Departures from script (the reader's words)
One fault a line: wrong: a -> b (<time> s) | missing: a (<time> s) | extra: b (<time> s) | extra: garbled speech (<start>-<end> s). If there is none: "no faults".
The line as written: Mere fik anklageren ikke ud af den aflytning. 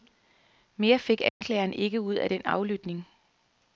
no faults